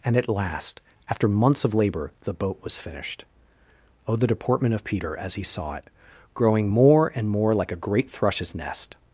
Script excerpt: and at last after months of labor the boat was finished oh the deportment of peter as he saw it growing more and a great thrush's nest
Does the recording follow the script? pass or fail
fail